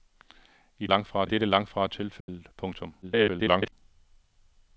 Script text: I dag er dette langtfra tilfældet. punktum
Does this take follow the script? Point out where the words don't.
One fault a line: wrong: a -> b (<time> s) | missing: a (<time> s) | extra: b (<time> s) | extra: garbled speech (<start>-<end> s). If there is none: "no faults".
wrong: dag -> langtfra (0.8 s)
extra: garbled speech (3.0-3.7 s)